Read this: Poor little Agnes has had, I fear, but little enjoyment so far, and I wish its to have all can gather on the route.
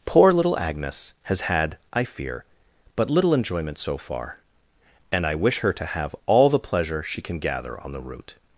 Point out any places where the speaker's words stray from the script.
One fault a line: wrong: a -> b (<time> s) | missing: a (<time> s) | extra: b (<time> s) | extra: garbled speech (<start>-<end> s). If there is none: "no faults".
wrong: its -> her (5.6 s)
extra: the pleasure she (6.5 s)